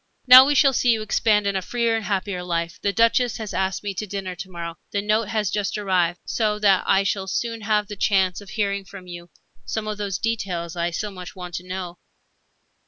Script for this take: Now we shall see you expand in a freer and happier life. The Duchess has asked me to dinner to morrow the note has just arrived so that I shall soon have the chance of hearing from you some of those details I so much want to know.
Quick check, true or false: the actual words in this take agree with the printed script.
true